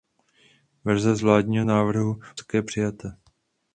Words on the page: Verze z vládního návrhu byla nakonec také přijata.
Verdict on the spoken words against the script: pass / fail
fail